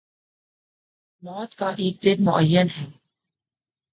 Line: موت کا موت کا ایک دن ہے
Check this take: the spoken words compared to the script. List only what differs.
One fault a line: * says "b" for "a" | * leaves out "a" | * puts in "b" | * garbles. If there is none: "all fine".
* leaves out "موت کا"
* puts in "معین"